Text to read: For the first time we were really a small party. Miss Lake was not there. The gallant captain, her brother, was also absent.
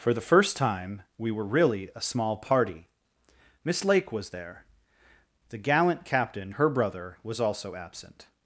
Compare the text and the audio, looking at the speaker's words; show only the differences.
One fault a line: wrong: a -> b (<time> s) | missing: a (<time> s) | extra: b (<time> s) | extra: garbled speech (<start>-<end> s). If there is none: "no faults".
missing: not (4.3 s)